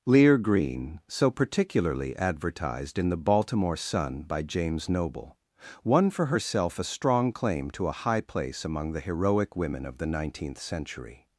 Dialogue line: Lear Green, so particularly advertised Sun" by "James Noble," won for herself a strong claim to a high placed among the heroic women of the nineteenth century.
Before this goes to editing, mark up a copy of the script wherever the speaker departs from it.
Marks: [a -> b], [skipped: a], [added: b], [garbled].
Lear Green, so particularly advertised [added: in the Baltimore] Sun" by "James Noble," won for herself a strong claim to a high [placed -> place] among the heroic women of the nineteenth century.